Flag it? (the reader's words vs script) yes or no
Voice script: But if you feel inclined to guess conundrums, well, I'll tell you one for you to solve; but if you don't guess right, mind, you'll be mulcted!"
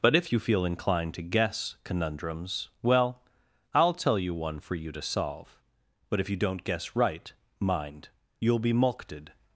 no